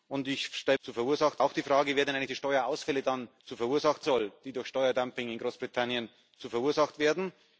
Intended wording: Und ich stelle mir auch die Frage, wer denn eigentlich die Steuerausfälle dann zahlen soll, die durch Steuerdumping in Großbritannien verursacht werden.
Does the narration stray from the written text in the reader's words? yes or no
yes